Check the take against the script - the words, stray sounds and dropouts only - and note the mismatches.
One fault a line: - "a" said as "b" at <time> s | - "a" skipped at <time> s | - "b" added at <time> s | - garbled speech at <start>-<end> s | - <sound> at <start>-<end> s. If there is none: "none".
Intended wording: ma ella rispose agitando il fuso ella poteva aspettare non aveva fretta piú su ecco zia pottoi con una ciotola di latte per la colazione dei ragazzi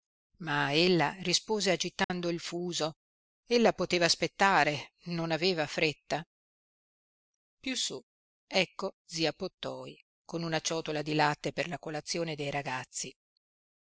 - dropout at 2.0-2.1 s